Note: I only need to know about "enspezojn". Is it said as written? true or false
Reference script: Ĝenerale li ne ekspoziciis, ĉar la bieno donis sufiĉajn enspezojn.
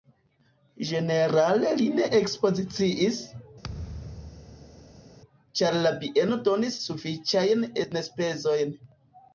true